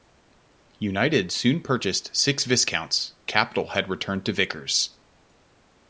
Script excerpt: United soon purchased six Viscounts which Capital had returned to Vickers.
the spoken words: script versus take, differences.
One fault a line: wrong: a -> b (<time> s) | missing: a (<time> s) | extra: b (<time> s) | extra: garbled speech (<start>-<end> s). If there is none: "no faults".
missing: which (3.1 s)